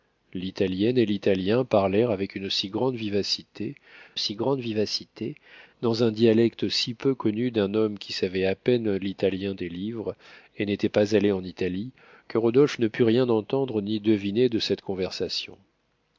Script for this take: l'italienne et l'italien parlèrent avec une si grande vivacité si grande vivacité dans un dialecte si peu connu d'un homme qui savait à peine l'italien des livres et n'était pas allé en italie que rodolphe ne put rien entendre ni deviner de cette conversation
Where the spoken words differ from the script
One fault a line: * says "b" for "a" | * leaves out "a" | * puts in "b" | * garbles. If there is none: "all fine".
all fine